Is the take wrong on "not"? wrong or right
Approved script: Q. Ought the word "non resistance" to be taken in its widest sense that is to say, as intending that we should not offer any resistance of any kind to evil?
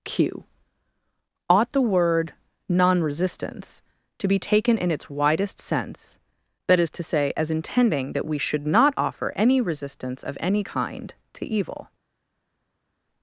right